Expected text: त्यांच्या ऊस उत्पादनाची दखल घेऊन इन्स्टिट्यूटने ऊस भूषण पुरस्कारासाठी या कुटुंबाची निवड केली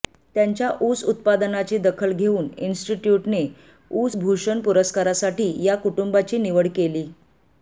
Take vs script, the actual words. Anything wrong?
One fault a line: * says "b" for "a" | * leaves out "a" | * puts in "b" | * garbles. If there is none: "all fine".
all fine